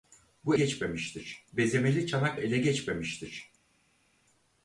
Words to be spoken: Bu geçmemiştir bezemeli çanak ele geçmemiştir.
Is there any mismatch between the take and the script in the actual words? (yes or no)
no